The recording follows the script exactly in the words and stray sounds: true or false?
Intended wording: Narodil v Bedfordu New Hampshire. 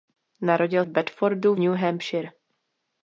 true